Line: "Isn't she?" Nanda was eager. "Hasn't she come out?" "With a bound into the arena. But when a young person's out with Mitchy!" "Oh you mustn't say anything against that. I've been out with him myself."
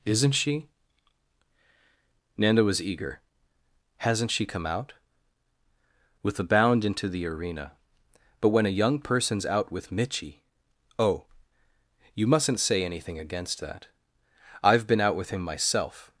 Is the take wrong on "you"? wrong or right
right